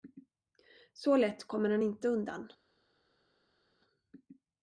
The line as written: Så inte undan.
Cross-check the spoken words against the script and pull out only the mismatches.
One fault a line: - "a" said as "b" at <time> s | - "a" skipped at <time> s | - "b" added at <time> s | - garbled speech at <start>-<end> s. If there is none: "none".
- "lätt kommer han" added at 1.2 s